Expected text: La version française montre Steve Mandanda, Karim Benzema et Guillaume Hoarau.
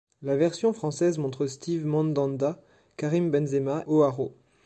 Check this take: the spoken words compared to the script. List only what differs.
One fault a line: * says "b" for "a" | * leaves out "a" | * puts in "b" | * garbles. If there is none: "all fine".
* leaves out "et Guillaume"